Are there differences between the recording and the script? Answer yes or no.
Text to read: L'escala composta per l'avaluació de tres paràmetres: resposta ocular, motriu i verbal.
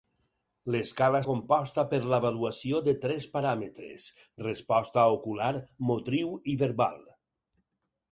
no